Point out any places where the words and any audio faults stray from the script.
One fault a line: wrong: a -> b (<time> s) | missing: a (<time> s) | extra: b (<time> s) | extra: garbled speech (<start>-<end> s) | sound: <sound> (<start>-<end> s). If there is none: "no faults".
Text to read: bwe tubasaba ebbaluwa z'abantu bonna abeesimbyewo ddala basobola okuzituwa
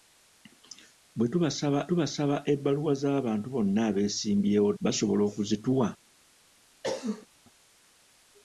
extra: tubasaba (1.9 s)
missing: ddala (4.7 s)
sound: cough (6.8-7.3 s)